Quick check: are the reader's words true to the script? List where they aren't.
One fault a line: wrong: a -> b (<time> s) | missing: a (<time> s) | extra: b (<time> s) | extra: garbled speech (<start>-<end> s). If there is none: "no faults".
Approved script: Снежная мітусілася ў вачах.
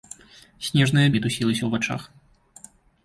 no faults